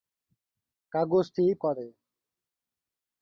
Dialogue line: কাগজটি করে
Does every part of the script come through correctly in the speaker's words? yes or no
yes